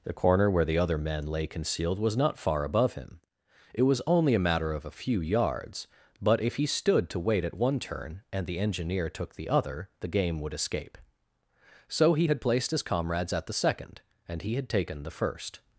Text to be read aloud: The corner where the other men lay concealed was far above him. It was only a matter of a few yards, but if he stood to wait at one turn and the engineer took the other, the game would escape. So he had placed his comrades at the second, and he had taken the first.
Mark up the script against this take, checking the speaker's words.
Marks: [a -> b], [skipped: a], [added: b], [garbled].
The corner where the other men lay concealed was [added: not] far above him. It was only a matter of a few yards, but if he stood to wait at one turn and the engineer took the other, the game would escape. So he had placed his comrades at the second, and he had taken the first.